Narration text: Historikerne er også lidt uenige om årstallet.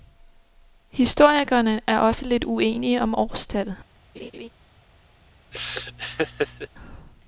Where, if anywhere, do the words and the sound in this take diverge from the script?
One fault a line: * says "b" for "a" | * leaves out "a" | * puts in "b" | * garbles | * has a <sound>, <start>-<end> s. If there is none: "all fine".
* has a laugh, 4.1-4.5 s
* has a laugh, 5.5-6.7 s